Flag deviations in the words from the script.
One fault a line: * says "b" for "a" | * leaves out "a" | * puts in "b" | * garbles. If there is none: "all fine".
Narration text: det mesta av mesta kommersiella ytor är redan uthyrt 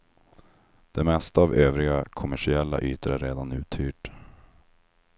* says "övriga" for "mesta"